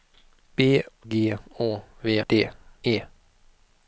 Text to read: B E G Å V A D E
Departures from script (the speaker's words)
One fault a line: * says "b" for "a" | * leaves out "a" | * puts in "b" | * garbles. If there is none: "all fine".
* leaves out "E"
* leaves out "A"